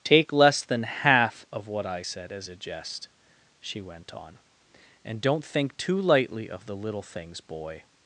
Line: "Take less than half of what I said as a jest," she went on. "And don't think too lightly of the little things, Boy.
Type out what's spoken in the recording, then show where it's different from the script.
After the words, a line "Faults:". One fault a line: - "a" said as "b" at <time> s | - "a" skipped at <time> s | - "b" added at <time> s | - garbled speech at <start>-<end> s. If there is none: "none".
"Take less than half of what I said as a jest," she went on. "And don't think too lightly of the little things, Boy.
Faults:
none